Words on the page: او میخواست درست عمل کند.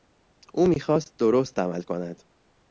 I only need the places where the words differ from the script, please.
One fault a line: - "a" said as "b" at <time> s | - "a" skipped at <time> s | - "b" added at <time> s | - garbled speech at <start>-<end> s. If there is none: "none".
none